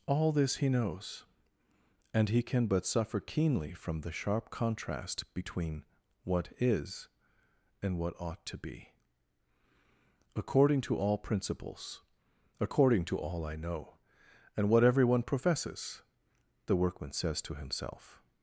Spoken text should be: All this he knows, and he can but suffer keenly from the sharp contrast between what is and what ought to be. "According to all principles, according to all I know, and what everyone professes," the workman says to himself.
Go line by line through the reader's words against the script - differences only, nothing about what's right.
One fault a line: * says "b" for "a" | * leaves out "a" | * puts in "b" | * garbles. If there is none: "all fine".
all fine